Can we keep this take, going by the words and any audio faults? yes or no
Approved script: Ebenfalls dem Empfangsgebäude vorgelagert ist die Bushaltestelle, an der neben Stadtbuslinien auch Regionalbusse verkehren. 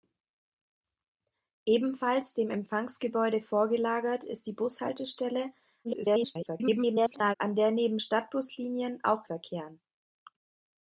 no